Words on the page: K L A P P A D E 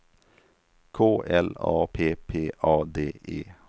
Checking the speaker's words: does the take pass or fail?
pass